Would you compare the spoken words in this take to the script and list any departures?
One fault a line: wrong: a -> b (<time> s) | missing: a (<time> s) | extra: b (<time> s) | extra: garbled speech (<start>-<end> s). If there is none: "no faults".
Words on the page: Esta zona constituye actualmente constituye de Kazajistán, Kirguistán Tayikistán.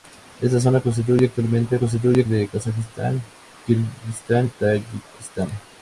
no faults